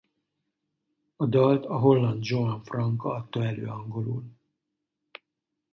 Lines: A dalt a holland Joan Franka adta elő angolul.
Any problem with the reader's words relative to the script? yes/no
no